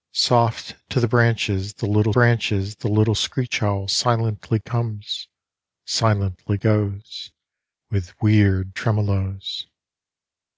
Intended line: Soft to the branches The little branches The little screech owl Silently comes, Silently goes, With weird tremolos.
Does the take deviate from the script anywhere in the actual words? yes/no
no